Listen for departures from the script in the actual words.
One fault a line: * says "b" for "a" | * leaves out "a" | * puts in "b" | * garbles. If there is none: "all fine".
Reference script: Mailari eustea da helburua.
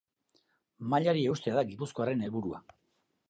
* puts in "gipuzkoarren"